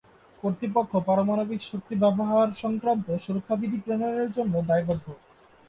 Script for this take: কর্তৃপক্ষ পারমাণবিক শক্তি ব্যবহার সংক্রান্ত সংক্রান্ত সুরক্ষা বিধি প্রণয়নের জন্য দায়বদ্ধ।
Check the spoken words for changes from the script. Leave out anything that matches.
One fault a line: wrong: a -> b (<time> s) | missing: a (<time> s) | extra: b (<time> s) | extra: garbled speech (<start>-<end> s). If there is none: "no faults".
missing: সংক্রান্ত (3.1 s)